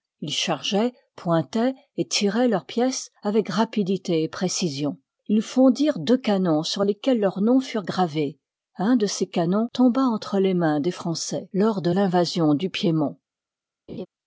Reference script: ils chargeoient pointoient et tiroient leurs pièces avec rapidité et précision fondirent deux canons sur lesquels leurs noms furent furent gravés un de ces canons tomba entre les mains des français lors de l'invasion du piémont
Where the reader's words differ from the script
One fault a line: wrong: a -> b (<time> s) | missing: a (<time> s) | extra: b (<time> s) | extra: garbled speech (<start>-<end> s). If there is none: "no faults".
extra: ils (5.3 s)
missing: furent (7.8 s)